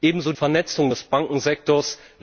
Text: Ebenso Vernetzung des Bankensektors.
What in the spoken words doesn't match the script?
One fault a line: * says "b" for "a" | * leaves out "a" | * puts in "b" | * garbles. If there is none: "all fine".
all fine